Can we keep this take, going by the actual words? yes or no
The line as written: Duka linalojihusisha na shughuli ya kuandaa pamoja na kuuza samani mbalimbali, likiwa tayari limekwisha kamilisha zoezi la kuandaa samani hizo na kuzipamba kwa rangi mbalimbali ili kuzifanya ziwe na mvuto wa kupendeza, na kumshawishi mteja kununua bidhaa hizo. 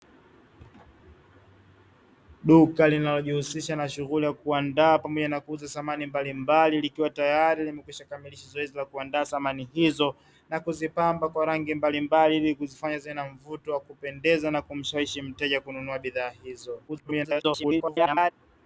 no